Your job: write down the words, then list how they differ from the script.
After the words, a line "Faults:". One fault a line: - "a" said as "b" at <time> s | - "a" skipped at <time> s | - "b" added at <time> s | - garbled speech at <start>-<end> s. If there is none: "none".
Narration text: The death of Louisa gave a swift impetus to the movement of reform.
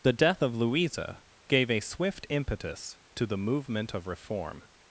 The death of Louisa gave a swift impetus to the movement of reform.
Faults:
none